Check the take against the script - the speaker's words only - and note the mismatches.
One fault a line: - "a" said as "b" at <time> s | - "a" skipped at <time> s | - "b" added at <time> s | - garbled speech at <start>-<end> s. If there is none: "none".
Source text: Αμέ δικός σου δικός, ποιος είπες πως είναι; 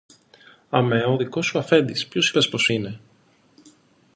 - "ο" added at 1.1 s
- "δικός" said as "αφέντης" at 1.6 s